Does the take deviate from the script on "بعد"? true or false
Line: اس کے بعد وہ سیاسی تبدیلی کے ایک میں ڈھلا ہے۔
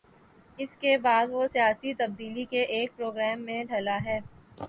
false